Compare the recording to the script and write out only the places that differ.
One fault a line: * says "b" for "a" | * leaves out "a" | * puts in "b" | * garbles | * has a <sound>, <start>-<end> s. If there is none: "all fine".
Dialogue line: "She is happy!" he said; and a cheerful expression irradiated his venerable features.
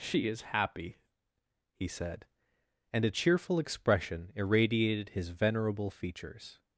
all fine